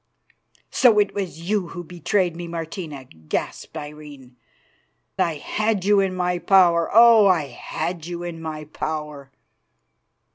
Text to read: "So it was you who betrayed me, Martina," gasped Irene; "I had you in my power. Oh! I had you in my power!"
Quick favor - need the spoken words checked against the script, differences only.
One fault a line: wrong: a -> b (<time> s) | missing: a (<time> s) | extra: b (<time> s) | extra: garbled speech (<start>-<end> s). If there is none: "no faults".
no faults